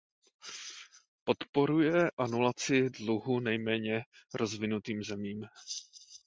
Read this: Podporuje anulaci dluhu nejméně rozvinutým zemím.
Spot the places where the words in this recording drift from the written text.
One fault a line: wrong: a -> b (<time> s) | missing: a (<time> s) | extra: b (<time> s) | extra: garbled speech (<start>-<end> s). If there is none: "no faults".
no faults